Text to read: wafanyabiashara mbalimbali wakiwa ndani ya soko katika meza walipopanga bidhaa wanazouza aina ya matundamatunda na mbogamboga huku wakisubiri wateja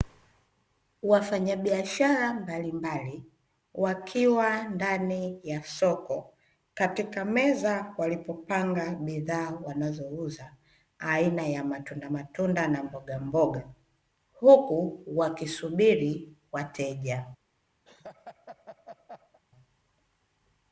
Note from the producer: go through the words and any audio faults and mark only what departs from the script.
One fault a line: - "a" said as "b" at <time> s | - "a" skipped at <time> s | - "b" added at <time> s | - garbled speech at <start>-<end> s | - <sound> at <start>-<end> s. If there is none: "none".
- laugh at 17.8-19.4 s